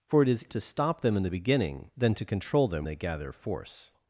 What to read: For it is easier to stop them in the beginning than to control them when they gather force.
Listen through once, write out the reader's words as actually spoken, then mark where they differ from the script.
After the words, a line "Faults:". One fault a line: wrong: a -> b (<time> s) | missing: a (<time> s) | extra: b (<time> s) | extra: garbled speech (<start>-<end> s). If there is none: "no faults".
For it is to stop them in the beginning than to control them they gather force.
Faults:
missing: easier (0.5 s)
missing: when (2.9 s)